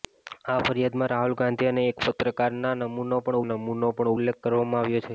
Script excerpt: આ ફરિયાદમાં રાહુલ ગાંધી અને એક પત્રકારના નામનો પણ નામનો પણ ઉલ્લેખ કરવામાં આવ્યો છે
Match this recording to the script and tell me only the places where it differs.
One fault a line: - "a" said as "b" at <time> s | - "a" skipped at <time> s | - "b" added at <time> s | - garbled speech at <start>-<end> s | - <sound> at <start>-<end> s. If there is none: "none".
none